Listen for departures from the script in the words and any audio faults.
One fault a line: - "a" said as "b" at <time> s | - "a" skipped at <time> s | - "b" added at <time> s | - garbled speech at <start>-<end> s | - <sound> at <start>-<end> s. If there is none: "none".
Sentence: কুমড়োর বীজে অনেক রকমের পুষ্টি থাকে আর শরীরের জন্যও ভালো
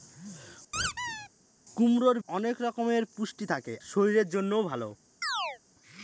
- squeak at 0.7-1.3 s
- "বীজে" skipped at 2.2 s
- "আর" skipped at 3.7 s
- chirp at 5.2-5.6 s